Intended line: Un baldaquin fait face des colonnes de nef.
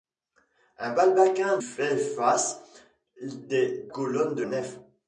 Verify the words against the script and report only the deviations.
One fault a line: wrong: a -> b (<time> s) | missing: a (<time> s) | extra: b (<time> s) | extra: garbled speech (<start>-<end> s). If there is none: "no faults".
no faults